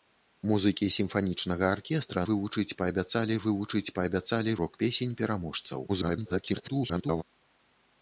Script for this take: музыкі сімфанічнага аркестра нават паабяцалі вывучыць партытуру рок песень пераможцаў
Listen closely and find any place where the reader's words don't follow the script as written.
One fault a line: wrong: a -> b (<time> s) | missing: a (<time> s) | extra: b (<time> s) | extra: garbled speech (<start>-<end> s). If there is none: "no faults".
wrong: нават -> вывучыць (2.3 s)
wrong: партытуру -> паабяцалі (4.0 s)
extra: garbled speech (5.9-7.2 s)